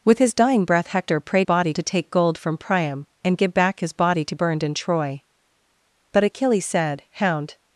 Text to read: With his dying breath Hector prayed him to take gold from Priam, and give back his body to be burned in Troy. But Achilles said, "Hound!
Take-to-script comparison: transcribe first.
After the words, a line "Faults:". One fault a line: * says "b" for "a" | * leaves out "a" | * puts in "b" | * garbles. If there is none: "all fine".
With his dying breath Hector prayed body to take gold from Priam, and give back his body to burned in Troy. But Achilles said, "Hound!
Faults:
* says "body" for "him"
* leaves out "be"